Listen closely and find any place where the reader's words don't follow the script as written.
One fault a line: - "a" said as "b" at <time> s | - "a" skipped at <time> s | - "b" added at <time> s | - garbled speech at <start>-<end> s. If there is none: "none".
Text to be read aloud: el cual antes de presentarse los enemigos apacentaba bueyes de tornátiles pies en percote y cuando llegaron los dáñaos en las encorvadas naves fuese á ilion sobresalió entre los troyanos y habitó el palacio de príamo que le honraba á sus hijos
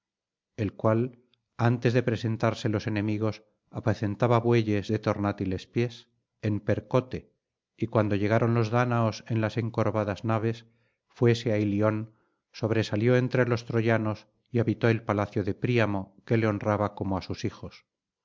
- "como" added at 16.9 s